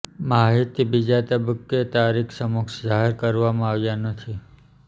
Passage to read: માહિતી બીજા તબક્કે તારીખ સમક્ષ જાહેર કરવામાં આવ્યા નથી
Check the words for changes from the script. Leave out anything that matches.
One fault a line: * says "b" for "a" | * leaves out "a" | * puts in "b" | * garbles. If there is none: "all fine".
all fine